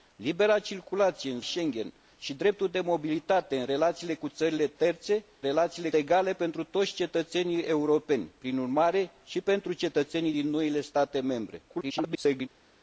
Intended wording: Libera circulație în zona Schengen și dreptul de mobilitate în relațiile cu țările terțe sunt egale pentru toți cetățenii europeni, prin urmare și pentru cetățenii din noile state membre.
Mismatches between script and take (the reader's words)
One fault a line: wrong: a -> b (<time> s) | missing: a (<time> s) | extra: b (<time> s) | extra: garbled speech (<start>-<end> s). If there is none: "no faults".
missing: zona (1.4 s)
wrong: sunt -> relațiile (5.4 s)
extra: garbled speech (11.7-12.5 s)